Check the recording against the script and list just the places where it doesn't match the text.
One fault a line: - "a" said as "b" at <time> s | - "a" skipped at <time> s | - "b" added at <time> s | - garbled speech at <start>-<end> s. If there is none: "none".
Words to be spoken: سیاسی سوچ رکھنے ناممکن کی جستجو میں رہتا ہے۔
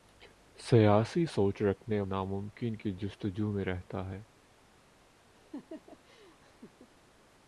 none